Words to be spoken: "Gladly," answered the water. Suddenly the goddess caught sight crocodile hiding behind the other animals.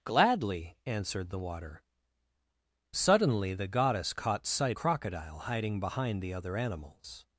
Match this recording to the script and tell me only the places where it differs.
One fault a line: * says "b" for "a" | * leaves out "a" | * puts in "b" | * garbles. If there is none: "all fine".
all fine